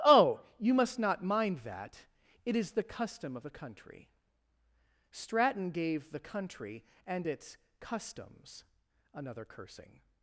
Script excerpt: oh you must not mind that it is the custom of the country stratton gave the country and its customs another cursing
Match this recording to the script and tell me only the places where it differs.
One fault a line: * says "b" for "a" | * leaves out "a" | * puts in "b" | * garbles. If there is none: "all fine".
all fine